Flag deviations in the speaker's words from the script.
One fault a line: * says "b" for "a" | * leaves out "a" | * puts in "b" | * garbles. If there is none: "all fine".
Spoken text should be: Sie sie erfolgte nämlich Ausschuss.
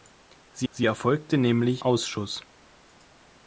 all fine